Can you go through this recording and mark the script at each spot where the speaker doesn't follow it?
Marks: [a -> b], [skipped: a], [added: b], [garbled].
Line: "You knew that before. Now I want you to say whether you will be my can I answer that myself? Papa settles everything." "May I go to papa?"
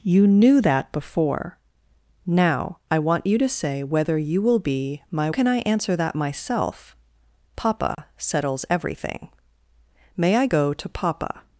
"You knew that before. Now I want you to say whether you will be my can I answer that myself? Papa settles everything." "May I go to papa?"